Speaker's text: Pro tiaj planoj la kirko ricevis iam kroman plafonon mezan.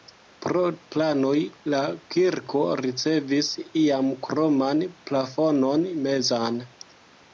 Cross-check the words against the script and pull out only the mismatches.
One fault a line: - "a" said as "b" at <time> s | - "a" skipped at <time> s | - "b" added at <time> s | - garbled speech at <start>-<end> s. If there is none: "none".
- "tiaj" skipped at 0.6 s